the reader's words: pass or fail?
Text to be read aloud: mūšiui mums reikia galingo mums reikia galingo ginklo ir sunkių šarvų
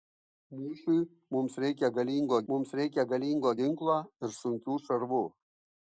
pass